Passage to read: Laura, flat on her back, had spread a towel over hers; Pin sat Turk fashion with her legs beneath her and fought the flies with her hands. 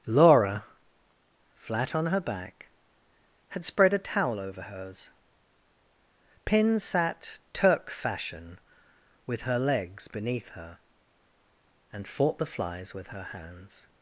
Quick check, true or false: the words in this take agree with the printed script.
true